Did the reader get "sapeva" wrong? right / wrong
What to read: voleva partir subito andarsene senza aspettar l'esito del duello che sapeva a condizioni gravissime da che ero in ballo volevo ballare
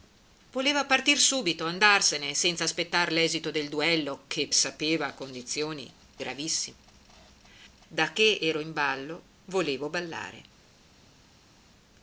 right